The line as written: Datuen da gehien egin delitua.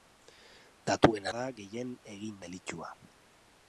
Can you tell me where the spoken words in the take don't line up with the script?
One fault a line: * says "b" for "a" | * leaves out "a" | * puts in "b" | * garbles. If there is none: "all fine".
all fine